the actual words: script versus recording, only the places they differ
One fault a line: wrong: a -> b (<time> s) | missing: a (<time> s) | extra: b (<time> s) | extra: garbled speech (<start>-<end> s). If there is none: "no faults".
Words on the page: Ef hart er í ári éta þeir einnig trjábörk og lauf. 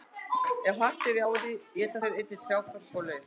no faults